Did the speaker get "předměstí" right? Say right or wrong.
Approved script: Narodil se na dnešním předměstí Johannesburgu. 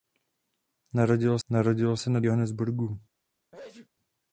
wrong